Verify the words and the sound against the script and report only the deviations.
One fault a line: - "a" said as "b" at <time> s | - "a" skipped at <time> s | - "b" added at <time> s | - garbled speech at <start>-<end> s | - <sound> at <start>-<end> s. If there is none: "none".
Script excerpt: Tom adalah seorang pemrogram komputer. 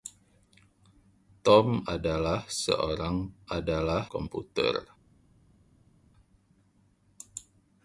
- "pemrogram" said as "adalah" at 3.5 s